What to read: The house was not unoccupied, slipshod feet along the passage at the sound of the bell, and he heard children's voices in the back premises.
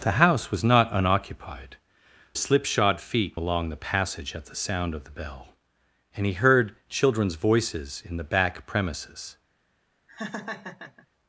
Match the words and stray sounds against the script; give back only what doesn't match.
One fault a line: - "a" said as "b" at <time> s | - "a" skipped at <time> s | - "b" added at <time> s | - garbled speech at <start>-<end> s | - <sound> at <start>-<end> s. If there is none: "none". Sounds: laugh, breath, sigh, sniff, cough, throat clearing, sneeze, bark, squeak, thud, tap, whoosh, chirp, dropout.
- laugh at 10.1-11.1 s